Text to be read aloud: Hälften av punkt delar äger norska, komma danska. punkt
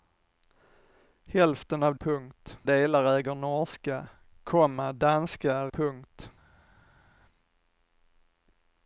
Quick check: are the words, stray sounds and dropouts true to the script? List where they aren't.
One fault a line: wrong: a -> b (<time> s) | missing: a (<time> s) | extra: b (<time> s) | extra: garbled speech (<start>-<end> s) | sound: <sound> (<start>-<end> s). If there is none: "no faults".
no faults